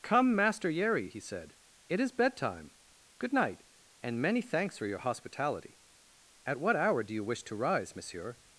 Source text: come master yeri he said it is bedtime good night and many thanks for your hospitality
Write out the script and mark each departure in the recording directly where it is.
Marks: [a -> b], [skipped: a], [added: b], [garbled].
come master yeri he said it is bedtime good night and many thanks for your hospitality [added: at what hour do you wish to rise monsieur]